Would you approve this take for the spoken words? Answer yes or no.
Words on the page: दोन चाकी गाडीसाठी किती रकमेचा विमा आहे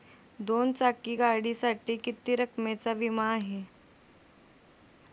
yes